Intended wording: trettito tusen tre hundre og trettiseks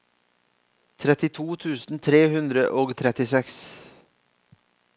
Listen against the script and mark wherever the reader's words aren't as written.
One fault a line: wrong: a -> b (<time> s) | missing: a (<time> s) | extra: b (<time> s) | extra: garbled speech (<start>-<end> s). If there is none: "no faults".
no faults